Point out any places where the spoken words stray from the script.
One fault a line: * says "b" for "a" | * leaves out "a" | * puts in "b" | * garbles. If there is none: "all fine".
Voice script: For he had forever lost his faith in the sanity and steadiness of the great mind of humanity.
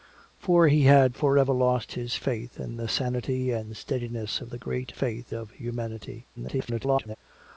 * says "faith" for "mind"
* garbles